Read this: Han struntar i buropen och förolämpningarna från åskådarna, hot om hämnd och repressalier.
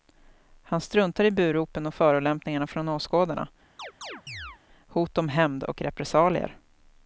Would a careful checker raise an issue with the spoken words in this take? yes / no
no